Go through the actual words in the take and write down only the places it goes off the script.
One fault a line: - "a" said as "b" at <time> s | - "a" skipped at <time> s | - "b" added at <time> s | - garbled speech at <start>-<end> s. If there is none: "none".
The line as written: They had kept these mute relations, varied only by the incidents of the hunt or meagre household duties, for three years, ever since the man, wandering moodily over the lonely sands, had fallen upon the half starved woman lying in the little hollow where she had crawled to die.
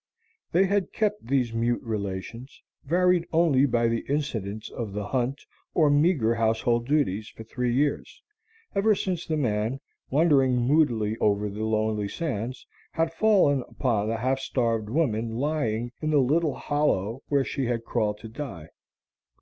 none